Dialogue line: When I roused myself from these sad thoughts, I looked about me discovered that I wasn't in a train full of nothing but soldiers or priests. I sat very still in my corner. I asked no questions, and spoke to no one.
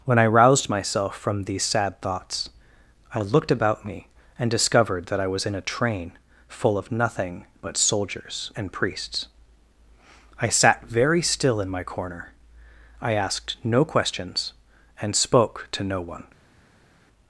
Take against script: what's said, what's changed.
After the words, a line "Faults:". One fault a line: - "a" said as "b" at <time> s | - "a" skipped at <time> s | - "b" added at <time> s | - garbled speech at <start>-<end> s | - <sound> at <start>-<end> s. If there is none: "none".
When I roused myself from these sad thoughts, I looked about me and discovered that I was in a train full of nothing but soldiers and priests. I sat very still in my corner. I asked no questions, and spoke to no one.
Faults:
- "and" added at 4.4 s
- "wasn't" said as "was" at 5.3 s
- "or" said as "and" at 8.5 s